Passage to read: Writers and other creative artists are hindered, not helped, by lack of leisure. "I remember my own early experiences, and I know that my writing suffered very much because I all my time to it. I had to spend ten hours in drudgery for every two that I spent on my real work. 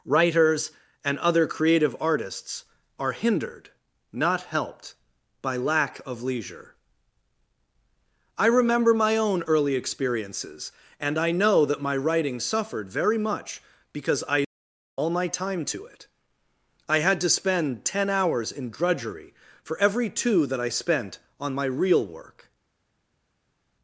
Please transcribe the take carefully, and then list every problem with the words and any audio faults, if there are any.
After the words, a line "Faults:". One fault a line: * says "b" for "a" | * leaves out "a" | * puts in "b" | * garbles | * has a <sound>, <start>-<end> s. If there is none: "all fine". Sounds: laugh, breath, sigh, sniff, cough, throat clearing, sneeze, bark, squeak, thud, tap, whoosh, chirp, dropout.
Writers and other creative artists are hindered, not helped, by lack of leisure. "I remember my own early experiences, and I know that my writing suffered very much because I all my time to it. I had to spend ten hours in drudgery for every two that I spent on my real work.
Faults:
all fine